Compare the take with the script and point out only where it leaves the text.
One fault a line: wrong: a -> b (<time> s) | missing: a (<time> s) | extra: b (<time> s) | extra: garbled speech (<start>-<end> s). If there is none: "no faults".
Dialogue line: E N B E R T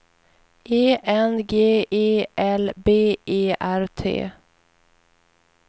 extra: G E L (1.4 s)